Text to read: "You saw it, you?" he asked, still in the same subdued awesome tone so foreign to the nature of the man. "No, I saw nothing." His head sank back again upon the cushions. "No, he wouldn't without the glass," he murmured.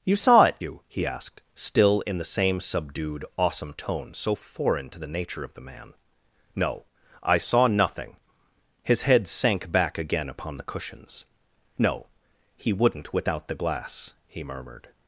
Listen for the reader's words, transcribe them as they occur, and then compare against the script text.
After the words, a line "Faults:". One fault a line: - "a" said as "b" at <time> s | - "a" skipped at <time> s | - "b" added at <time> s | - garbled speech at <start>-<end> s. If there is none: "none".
"You saw it, you?" he asked, still in the same subdued awesome tone so foreign to the nature of the man. "No, I saw nothing." His head sank back again upon the cushions. "No, he wouldn't without the glass," he murmured.
Faults:
none